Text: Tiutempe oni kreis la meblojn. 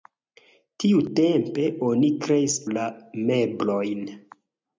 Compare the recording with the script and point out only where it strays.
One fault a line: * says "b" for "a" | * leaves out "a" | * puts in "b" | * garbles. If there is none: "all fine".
all fine